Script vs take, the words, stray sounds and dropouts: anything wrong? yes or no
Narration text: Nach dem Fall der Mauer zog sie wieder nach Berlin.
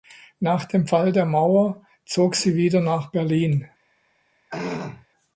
yes